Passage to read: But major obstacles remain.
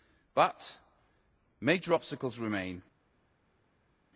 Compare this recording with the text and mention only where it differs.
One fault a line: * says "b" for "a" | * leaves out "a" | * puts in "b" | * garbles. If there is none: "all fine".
all fine